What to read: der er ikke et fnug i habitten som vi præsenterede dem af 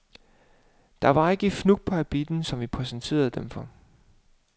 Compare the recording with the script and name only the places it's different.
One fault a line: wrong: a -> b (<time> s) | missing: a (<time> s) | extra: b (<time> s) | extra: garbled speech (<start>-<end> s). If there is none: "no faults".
wrong: er -> var (1.1 s)
wrong: i -> på (1.8 s)
wrong: af -> for (3.5 s)